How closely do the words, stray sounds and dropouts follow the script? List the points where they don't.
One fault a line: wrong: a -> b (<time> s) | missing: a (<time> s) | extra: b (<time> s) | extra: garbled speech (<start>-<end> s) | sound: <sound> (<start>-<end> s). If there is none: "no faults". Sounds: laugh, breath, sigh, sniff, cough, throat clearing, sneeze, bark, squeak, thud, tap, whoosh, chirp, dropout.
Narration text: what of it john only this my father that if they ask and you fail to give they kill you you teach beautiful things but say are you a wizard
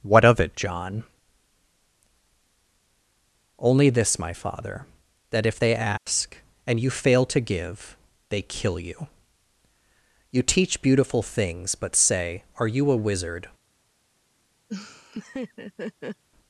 sound: dropout (6.0-6.1 s)
sound: laugh (14.7-16.2 s)